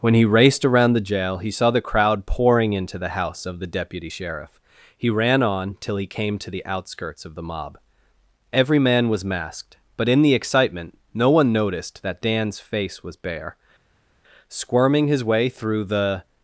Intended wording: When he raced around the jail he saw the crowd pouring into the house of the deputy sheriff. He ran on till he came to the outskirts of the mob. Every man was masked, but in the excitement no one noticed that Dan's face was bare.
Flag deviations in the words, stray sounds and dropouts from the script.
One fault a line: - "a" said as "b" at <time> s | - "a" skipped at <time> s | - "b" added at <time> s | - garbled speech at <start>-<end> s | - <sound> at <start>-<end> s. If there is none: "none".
- "Squirming his way through the" added at 14.5 s